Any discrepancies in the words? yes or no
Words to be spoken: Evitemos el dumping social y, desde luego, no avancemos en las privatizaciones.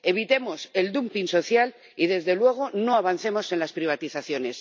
no